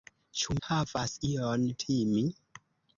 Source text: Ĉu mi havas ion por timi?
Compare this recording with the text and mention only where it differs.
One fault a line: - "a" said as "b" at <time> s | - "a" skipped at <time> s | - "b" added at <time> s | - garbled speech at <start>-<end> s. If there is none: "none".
- "mi" skipped at 0.5 s
- "por" skipped at 1.6 s